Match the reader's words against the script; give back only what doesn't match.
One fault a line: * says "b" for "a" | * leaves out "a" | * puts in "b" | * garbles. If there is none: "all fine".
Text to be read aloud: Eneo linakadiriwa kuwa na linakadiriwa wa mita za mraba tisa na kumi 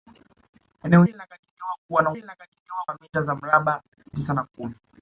all fine